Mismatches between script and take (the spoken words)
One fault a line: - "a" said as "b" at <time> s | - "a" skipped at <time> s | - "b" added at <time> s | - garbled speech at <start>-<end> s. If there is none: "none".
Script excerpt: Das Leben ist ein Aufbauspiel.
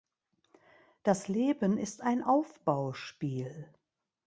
none